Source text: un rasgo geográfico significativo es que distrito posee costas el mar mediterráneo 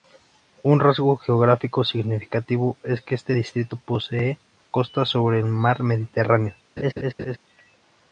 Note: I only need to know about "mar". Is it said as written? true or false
true